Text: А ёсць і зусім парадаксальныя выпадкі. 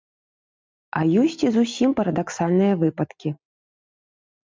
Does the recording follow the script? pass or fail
pass